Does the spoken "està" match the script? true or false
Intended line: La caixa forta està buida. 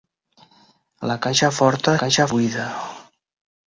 false